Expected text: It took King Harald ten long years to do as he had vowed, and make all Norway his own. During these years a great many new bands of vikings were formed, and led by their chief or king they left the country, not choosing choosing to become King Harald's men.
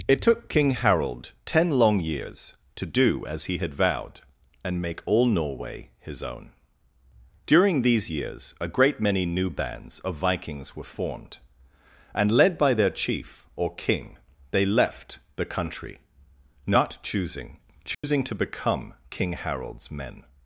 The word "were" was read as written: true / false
true